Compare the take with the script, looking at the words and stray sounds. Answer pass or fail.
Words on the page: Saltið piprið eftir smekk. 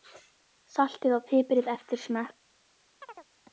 fail